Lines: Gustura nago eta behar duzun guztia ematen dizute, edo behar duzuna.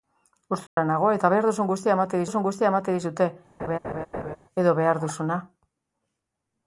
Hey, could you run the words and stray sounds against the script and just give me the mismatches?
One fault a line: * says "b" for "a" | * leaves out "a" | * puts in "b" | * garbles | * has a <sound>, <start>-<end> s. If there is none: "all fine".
* has a dropout, 0.7-0.8 s
* puts in "duzun guztia ematen"
* has a laugh, 3.6-4.4 s